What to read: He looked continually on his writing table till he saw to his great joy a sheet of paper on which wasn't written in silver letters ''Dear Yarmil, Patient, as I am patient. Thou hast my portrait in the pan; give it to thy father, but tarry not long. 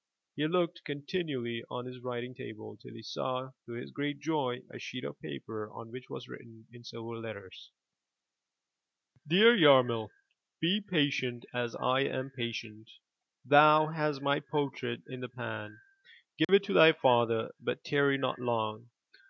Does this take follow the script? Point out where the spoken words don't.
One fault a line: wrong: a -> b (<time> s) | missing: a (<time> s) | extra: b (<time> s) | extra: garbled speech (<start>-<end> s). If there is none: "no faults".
wrong: wasn't -> was (6.1 s)
extra: Be (10.6 s)